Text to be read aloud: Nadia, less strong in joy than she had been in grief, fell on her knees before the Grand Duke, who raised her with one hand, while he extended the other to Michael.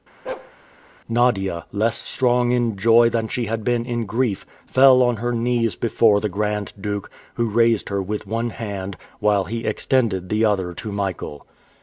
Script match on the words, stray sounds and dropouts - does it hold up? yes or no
no